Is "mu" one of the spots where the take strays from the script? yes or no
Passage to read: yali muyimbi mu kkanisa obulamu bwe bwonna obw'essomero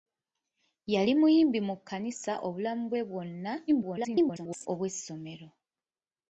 no